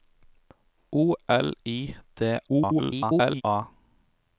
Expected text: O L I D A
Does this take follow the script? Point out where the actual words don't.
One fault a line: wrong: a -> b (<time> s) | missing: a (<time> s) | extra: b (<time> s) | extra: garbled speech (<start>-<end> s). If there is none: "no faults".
extra: garbled speech (2.5-3.4 s)